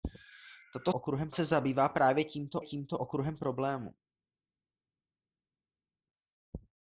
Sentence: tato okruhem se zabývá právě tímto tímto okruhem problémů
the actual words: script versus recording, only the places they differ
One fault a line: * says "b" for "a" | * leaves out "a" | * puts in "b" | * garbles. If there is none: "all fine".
all fine